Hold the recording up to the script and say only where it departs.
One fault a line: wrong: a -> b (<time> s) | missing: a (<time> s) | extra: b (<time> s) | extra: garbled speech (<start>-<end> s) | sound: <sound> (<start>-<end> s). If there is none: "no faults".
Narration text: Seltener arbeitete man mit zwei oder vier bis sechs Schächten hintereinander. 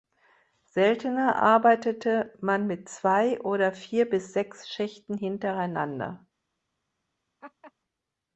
sound: laugh (7.4-7.7 s)